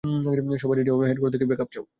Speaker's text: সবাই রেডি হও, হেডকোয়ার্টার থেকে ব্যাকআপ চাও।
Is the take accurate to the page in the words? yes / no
yes